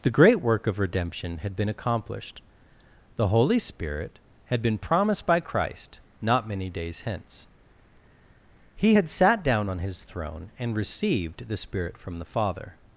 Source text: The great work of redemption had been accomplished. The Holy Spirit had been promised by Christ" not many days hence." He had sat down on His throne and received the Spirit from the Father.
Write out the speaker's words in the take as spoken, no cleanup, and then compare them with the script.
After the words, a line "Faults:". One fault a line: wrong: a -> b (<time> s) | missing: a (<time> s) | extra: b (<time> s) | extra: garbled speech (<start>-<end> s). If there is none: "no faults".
The great work of redemption had been accomplished. The Holy Spirit had been promised by Christ" not many days hence." He had sat down on His throne and received the Spirit from the Father.
Faults:
no faults